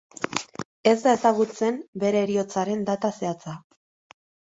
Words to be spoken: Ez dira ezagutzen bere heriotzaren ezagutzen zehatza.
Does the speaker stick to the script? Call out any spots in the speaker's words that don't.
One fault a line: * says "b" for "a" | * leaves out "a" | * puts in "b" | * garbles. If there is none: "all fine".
* says "da" for "dira"
* says "data" for "ezagutzen"